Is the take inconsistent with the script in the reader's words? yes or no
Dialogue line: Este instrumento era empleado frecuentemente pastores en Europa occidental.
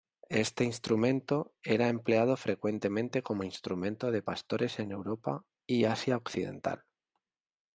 yes